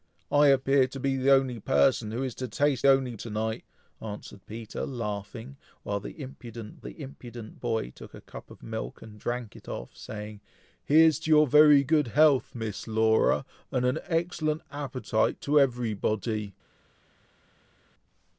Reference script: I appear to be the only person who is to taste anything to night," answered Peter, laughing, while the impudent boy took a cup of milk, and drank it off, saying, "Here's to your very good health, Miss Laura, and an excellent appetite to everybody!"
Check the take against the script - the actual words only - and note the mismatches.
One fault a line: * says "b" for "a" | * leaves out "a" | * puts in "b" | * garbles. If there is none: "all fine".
* says "only" for "anything"
* puts in "the impudent"